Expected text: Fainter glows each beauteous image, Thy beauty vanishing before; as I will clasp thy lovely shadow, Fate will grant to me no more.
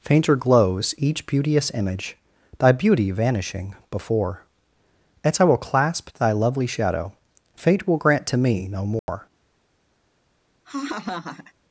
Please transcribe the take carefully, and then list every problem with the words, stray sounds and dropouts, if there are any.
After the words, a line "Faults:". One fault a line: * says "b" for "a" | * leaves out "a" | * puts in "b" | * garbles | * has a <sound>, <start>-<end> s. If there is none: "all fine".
Fainter glows each beauteous image, Thy beauty vanishing before; as I will clasp thy lovely shadow, Fate will grant to me no more.
Faults:
* has a dropout, 9.0-9.1 s
* has a laugh, 10.6-11.5 s